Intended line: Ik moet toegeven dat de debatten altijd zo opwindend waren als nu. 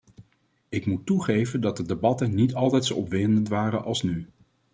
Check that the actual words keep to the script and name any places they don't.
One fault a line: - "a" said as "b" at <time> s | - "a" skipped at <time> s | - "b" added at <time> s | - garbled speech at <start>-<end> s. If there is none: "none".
- "niet" added at 2.4 s